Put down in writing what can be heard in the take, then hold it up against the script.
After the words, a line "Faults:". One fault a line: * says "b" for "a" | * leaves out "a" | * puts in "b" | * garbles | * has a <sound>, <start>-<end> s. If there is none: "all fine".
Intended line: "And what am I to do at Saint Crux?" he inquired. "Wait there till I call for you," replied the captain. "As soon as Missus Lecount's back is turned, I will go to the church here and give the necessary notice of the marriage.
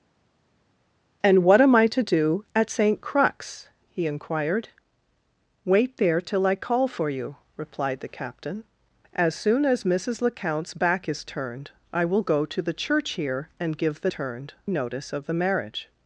"And what am I to do at Saint Crux?" he inquired. "Wait there till I call for you," replied the captain. "As soon as Missus Lecount's back is turned, I will go to the church here and give the turned notice of the marriage.
Faults:
* says "turned" for "necessary"